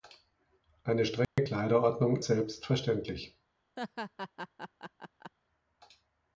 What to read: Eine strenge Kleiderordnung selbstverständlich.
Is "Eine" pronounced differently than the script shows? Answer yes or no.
no